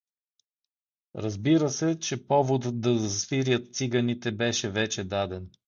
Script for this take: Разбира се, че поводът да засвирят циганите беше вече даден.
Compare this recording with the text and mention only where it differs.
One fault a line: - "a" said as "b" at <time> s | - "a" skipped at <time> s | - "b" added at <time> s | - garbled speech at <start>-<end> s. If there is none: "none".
none